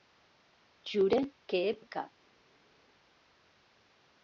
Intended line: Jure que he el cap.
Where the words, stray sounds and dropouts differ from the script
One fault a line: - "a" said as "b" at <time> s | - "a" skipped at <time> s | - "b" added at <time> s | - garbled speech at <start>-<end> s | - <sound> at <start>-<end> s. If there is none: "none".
none